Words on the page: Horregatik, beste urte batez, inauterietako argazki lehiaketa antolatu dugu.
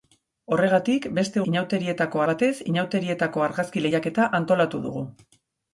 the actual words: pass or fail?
fail